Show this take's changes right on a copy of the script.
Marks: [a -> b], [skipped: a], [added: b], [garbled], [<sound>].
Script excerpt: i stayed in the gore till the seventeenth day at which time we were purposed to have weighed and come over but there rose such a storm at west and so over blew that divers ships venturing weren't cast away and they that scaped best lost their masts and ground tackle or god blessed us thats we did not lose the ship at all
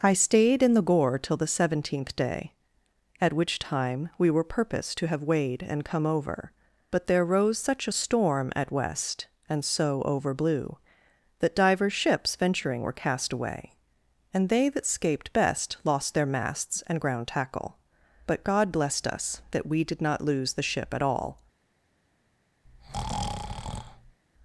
i stayed in the gore till the seventeenth day at which time we were purposed to have weighed and come over but there rose such a storm at west and so over blew that divers ships venturing [weren't -> were] cast away and they that scaped best lost their masts and ground tackle [or -> but] god blessed us [thats -> that] we did not lose the ship at all [breath]